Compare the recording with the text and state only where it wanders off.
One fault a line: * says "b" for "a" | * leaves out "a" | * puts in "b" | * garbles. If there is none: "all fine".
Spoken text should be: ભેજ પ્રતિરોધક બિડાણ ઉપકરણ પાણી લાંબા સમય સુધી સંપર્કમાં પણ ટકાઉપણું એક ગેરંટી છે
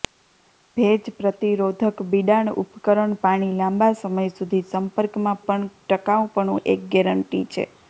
all fine